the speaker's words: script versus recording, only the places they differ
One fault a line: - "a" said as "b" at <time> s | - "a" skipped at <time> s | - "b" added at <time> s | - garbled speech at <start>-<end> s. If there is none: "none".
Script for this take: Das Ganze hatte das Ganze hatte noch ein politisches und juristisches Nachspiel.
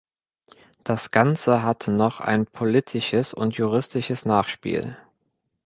- "das Ganze hatte" skipped at 1.9 s